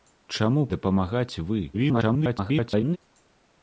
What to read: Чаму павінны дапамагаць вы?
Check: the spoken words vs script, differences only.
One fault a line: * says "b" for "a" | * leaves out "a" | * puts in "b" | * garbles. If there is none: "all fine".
* leaves out "павінны"
* garbles